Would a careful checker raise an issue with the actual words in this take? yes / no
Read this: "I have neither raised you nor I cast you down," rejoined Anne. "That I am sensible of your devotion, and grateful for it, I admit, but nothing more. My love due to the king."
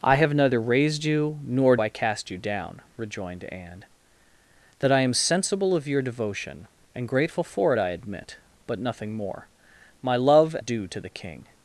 no